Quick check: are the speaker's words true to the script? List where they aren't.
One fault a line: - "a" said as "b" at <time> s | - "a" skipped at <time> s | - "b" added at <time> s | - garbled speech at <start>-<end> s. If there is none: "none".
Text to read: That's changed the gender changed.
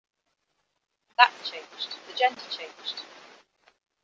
none